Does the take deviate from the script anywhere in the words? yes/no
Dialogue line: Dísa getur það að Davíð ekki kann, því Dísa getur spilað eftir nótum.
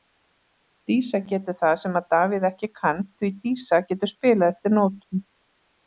yes